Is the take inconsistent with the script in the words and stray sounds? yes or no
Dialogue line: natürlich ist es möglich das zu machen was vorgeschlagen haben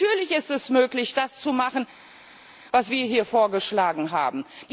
yes